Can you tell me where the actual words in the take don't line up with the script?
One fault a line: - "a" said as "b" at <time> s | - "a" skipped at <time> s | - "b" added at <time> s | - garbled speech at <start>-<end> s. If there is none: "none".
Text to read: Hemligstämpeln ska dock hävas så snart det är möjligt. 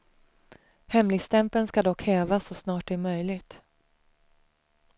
none